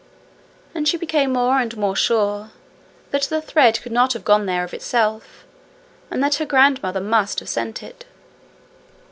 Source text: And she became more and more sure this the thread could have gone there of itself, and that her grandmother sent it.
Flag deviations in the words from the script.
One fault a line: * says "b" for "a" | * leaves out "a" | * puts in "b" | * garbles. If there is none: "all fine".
* says "that" for "this"
* puts in "not"
* puts in "must have"